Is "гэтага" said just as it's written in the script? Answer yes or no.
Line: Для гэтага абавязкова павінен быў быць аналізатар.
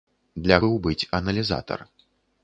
no